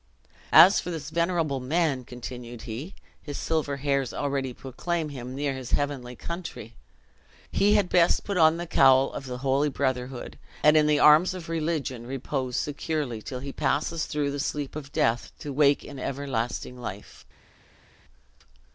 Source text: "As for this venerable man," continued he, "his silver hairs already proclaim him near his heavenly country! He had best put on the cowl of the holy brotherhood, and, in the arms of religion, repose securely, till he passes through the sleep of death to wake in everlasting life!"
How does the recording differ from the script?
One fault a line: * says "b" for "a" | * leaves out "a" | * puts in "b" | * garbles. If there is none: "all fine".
all fine